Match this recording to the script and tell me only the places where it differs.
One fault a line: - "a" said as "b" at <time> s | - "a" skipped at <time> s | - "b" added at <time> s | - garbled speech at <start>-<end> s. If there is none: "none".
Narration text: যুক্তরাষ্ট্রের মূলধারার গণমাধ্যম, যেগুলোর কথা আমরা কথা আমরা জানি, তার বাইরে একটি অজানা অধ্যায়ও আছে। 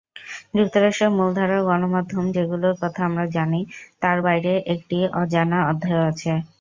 - "কথা আমরা" skipped at 3.2 s